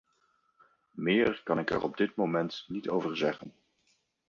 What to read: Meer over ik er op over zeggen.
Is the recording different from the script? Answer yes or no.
yes